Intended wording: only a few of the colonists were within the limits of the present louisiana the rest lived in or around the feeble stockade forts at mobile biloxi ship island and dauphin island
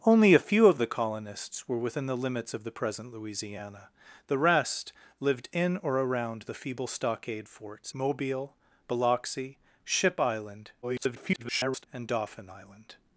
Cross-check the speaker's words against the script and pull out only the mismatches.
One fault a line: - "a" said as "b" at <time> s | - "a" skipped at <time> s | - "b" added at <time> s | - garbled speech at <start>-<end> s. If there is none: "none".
- "at" skipped at 7.9 s
- garbled speech at 10.8-11.9 s